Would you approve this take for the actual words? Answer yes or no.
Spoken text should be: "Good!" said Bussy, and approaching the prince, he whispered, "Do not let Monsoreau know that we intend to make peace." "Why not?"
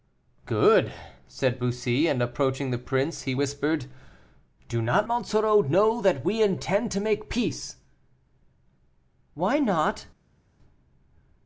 no